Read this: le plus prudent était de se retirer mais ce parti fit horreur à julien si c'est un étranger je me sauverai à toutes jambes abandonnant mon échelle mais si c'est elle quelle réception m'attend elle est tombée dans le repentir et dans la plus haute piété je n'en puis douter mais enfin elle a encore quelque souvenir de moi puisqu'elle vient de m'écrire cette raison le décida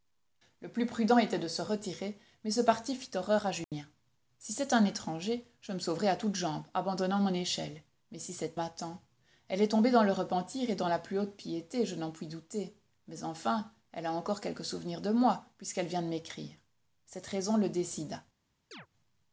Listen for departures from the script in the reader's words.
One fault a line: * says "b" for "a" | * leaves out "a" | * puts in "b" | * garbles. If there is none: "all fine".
* leaves out "elle quelle réception"